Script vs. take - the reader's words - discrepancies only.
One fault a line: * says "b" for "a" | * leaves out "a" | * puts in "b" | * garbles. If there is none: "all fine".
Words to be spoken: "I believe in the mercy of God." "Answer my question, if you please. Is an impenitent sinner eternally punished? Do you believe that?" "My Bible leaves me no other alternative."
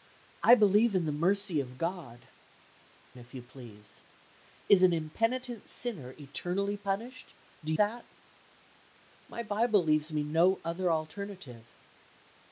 * leaves out "Answer my question"
* leaves out "you believe"